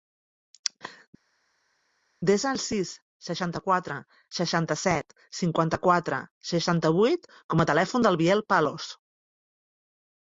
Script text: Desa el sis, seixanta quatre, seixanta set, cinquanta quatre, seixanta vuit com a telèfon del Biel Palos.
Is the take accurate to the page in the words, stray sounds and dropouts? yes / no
yes